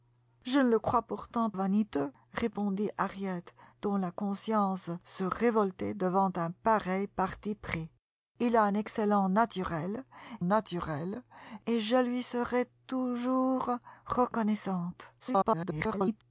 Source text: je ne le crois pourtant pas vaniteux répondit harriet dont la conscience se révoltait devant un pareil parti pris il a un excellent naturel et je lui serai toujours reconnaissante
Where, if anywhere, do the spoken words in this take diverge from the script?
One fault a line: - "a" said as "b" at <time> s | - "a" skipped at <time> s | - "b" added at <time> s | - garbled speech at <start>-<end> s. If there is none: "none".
- "pas" skipped at 1.5 s
- "naturel" added at 10.4 s
- garbled speech at 15.2-16.2 s